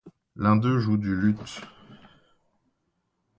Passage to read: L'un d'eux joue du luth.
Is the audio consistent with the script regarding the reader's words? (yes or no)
yes